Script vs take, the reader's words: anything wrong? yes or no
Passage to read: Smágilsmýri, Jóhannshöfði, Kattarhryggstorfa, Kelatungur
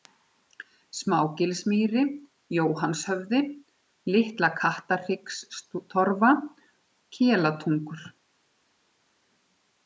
yes